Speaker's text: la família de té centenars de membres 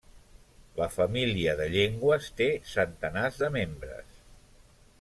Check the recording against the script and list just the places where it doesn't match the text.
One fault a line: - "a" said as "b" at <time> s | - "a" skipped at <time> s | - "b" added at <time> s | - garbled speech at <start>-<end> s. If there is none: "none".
- "llengües" added at 1.8 s